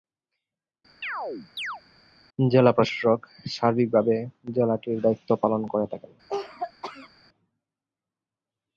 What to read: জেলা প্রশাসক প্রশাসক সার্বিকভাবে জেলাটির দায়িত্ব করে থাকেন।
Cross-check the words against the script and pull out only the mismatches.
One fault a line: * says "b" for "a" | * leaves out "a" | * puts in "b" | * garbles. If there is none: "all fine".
* leaves out "প্রশাসক"
* puts in "পালন"